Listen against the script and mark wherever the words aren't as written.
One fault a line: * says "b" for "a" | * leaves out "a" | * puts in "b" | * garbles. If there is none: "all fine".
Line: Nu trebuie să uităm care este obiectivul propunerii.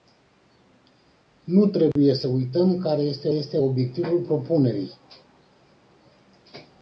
* puts in "este"